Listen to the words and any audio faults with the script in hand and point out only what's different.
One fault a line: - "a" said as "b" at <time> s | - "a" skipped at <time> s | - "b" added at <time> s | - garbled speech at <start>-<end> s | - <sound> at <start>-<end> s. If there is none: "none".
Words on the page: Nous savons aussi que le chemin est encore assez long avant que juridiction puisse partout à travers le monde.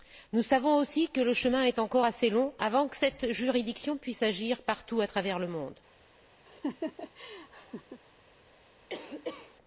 - "cette" added at 3.0 s
- "agir" added at 4.2 s
- laugh at 6.5-8.0 s
- cough at 8.9-9.6 s